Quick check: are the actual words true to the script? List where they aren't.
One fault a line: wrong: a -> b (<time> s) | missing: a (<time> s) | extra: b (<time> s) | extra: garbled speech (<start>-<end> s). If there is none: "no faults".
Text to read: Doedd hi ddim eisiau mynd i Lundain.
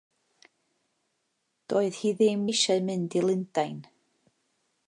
no faults